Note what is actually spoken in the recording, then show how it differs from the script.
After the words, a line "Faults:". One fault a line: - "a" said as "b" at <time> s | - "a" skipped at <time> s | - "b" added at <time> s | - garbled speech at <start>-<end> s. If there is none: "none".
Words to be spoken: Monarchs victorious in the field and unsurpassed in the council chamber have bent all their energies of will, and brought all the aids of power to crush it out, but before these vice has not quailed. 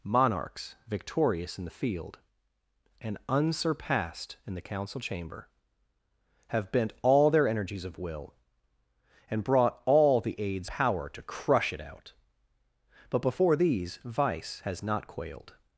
Monarchs victorious in the field and unsurpassed in the council chamber have bent all their energies of will, and brought all the aids power to crush it out, but before these vice has not quailed.
Faults:
- "of" skipped at 10.7 s